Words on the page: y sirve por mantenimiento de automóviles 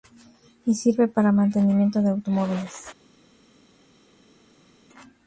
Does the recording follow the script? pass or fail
fail